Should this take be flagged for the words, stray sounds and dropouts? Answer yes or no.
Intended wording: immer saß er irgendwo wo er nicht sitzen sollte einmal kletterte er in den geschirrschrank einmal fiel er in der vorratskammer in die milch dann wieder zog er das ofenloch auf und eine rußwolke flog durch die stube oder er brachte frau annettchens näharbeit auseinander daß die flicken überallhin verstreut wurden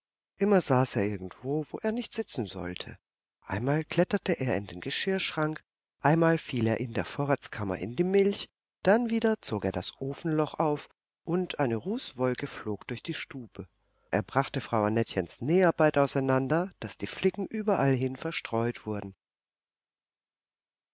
yes